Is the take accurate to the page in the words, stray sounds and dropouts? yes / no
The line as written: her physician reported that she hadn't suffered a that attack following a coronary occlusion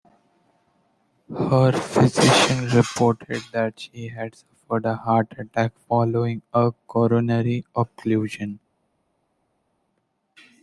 no